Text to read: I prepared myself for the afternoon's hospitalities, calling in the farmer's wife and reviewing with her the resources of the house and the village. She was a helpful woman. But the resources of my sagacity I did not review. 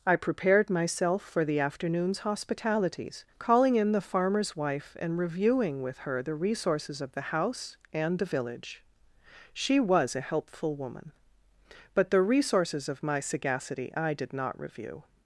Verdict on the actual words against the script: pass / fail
pass